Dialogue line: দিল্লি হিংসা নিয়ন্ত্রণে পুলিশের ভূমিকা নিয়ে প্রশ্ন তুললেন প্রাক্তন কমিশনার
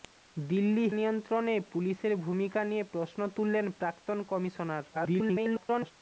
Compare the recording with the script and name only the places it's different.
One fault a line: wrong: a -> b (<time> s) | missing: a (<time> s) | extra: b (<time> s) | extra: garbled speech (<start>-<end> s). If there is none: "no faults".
missing: হিংসা (0.8 s)
extra: garbled speech (4.9-5.9 s)